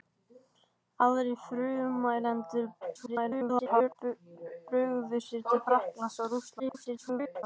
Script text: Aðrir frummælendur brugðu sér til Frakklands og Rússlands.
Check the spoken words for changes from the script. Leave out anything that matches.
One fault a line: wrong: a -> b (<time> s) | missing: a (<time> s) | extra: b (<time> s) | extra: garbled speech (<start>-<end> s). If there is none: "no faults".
extra: garbled speech (2.8-4.0 s)
extra: garbled speech (6.6-7.4 s)